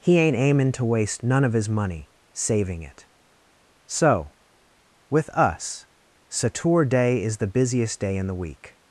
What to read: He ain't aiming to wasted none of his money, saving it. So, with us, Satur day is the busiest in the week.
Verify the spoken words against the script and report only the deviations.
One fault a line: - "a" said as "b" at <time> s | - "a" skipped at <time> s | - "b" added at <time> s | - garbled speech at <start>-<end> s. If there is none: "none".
- "wasted" said as "waste" at 0.8 s
- "day" added at 8.0 s